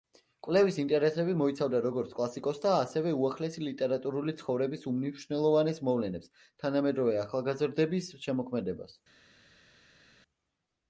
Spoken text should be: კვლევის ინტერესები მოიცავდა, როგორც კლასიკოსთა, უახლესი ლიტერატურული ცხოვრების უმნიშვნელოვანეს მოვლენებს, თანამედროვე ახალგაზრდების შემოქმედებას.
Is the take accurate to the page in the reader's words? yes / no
no